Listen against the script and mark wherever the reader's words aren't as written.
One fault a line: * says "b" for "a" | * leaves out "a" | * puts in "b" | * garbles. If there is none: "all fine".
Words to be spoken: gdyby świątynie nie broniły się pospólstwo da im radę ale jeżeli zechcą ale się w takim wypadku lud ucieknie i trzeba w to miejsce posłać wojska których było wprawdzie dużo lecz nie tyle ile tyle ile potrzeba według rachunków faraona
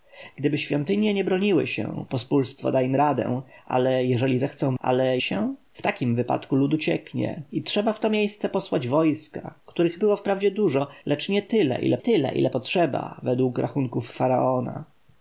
all fine